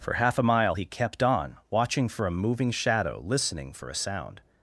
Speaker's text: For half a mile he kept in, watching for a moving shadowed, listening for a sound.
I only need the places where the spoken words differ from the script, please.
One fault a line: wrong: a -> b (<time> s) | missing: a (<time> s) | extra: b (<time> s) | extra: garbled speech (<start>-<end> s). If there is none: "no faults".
wrong: in -> on (1.2 s)
wrong: shadowed -> shadow (2.7 s)